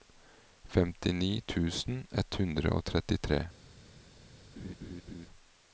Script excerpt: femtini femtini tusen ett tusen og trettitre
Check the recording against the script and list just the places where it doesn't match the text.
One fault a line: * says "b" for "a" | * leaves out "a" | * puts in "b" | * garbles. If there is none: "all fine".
* leaves out "femtini"
* says "hundre" for "tusen"